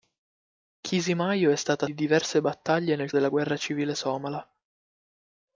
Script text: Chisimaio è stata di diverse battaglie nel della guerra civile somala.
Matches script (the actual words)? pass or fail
pass